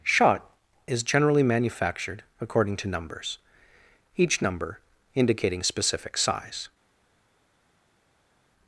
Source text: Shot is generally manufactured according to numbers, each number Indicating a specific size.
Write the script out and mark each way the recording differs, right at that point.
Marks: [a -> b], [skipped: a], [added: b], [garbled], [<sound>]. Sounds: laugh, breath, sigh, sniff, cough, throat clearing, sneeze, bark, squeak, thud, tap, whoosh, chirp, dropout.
Shot is generally manufactured according to numbers, each number Indicating [skipped: a] specific size.